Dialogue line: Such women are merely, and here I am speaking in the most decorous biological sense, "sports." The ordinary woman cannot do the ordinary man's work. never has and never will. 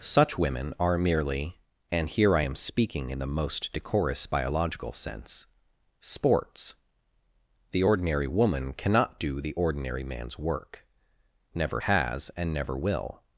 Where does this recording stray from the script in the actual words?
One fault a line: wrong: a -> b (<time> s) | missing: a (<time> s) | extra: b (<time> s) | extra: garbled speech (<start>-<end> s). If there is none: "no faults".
no faults